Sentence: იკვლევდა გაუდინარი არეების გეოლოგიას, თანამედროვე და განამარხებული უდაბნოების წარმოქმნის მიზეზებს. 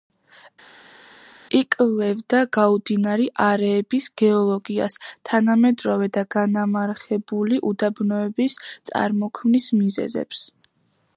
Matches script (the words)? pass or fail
pass